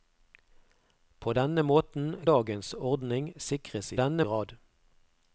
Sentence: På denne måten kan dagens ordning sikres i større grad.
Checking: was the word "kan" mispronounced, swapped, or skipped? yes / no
yes